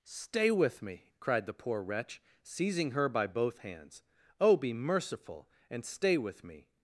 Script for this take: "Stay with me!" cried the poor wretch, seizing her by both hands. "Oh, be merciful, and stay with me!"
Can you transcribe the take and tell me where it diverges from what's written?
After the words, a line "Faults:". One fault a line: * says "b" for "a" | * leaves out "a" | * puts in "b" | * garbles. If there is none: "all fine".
"Stay with me!" cried the poor wretch, seizing her by both hands. "Oh, be merciful, and stay with me!"
Faults:
all fine